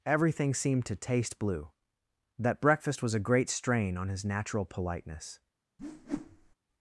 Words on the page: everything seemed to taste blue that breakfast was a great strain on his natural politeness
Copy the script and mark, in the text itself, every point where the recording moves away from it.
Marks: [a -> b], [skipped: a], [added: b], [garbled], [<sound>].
everything seemed to taste blue that breakfast was a great strain on his natural politeness [whoosh]